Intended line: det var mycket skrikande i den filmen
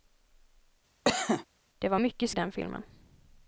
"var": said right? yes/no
yes